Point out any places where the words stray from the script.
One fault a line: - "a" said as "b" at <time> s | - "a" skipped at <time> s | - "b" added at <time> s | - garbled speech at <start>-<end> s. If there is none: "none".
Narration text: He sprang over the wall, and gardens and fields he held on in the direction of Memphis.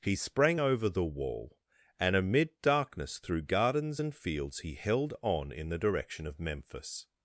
- "amid darkness through" added at 2.1 s